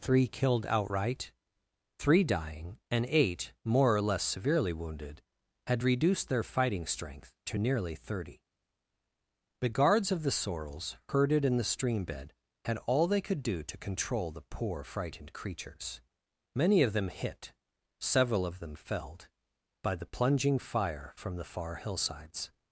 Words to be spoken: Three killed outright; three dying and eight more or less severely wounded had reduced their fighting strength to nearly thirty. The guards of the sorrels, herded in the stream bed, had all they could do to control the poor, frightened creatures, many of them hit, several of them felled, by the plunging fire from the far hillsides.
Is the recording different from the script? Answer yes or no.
no